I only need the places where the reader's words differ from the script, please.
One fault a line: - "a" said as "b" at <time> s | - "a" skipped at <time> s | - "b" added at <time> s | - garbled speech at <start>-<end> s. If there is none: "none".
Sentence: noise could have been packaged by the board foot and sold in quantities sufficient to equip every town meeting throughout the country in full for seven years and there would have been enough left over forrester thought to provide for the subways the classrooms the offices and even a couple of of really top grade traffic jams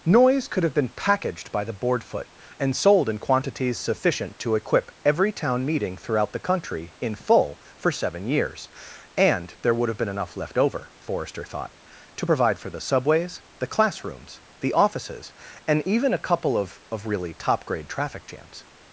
none